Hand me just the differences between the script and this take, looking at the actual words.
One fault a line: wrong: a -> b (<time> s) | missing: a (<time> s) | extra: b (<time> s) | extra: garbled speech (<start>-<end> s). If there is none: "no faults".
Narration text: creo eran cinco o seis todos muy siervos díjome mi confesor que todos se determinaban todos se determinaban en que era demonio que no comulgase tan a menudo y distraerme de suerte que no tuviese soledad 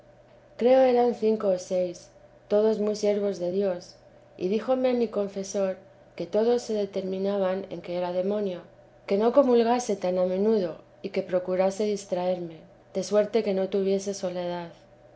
extra: de dios y (3.4 s)
missing: todos se determinaban (7.7 s)
extra: que procurase (11.1 s)